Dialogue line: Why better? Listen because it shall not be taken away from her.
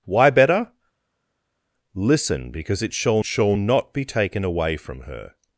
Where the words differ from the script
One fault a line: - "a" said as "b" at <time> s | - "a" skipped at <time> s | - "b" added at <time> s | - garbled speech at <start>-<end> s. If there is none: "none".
- "shall" added at 3.2 s